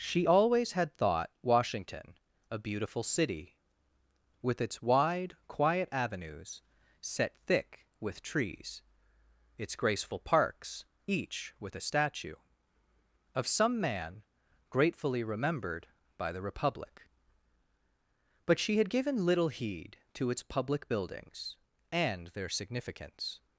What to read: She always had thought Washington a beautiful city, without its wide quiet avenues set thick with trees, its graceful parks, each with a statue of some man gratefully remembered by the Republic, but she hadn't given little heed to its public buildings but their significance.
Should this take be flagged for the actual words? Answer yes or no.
yes